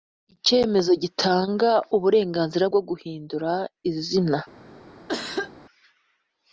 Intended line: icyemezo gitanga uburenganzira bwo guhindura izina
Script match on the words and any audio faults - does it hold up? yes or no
no